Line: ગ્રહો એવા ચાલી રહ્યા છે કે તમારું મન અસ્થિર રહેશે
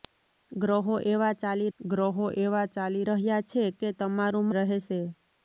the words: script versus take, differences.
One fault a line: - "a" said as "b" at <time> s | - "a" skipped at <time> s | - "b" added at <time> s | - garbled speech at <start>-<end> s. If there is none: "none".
- "ગ્રહો એવા ચાલી" added at 1.8 s
- "મન અસ્થિર" skipped at 4.5 s